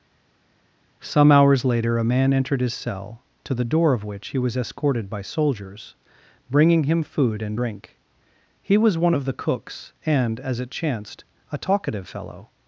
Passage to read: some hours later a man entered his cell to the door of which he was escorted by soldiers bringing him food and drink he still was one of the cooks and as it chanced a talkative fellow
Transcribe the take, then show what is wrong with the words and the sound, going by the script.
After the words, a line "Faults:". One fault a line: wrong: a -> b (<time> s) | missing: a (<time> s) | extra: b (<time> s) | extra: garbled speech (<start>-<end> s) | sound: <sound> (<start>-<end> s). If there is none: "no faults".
some hours later a man entered his cell to the door of which he was escorted by soldiers bringing him food and drink he was one of the cooks and as it chanced a talkative fellow
Faults:
missing: still (8.8 s)